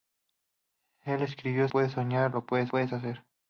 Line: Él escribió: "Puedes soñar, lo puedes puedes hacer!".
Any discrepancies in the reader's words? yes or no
no